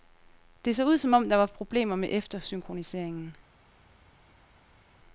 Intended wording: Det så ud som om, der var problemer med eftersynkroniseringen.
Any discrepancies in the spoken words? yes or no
no